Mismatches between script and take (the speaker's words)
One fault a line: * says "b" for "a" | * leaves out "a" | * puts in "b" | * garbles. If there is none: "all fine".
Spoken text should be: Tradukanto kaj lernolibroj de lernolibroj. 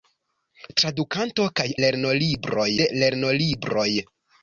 all fine